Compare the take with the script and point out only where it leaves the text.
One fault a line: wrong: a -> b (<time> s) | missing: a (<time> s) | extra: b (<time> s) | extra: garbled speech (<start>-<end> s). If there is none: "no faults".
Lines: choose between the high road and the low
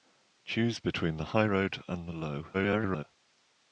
extra: garbled speech (2.5-3.0 s)